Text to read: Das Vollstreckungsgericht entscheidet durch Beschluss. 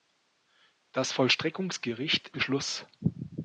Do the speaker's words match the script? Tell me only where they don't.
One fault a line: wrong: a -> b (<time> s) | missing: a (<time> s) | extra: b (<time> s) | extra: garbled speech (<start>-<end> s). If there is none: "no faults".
missing: entscheidet durch (2.4 s)